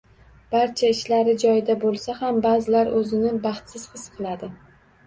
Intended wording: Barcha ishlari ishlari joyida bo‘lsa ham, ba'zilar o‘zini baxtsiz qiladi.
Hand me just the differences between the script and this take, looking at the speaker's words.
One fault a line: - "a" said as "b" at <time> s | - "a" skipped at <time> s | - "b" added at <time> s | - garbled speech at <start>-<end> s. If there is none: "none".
- "ishlari" skipped at 1.4 s
- "his" added at 4.0 s